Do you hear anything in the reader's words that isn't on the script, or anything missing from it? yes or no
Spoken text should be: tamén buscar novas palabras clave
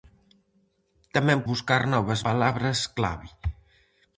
no